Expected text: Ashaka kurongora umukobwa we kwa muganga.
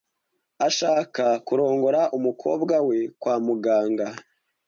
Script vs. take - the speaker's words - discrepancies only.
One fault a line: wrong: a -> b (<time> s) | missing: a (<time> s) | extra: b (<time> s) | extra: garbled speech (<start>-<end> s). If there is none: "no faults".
no faults